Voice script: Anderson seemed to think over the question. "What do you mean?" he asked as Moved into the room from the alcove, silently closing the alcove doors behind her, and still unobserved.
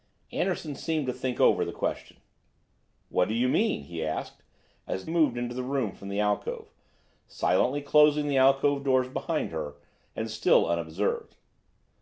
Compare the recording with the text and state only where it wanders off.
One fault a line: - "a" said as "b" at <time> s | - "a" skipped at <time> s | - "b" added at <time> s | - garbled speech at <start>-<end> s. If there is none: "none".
none